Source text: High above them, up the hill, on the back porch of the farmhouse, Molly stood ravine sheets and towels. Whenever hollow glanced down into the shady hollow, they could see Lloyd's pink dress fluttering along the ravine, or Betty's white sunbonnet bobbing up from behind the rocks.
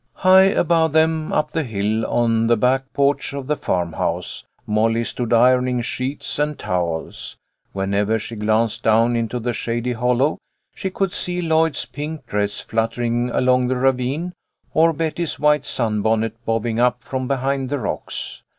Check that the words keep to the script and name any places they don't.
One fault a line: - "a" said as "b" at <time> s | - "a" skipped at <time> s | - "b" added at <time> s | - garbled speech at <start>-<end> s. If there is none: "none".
- "ravine" said as "ironing" at 5.3 s
- "hollow" said as "she" at 8.2 s
- "they" said as "she" at 10.7 s